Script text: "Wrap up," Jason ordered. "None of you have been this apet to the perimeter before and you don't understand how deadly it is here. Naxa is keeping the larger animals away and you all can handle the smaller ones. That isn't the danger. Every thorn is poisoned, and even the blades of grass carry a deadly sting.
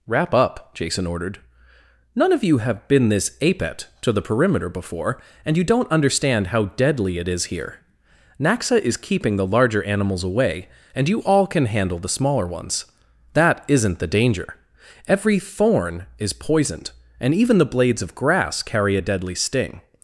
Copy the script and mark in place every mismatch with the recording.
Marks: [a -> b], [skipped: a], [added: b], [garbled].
"Wrap up," Jason ordered. "None of you have been this apet to the perimeter before and you don't understand how deadly it is here. Naxa is keeping the larger animals away and you all can handle the smaller ones. That isn't the danger. Every thorn is poisoned, and even the blades of grass carry a deadly sting.